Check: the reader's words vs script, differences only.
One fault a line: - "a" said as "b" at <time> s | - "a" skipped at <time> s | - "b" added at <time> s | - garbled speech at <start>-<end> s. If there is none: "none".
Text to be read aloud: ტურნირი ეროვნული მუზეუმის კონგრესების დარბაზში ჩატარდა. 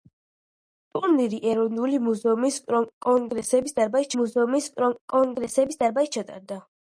- "მუზეუმის კონგრესების დარბაზში" added at 4.2 s